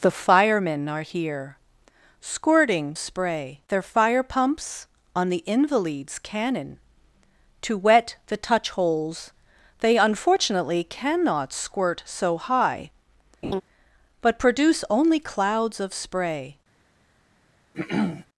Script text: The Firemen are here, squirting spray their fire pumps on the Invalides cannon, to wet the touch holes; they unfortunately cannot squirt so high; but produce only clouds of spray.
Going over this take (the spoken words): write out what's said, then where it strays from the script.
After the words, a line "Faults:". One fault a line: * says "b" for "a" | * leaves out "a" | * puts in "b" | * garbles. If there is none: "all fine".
The Firemen are here, squirting spray their fire pumps on the Invalides cannon, to wet the touch holes; they unfortunately cannot squirt so high; but produce only clouds of spray.
Faults:
all fine